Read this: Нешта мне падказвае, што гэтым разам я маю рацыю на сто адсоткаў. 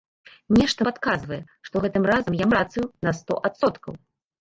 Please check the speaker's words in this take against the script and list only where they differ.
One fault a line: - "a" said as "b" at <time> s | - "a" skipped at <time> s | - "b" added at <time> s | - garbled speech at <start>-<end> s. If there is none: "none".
- "мне" skipped at 0.9 s
- "маю" skipped at 2.5 s